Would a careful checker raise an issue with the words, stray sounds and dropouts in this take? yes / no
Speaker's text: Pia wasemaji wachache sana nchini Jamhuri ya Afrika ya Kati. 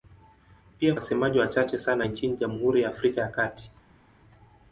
no